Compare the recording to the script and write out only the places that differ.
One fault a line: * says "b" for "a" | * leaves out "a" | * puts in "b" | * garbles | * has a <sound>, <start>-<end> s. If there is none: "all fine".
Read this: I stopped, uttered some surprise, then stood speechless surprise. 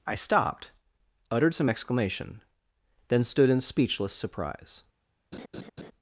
* says "exclamation" for "surprise"
* puts in "in"
* has a laugh, 5.3-5.9 s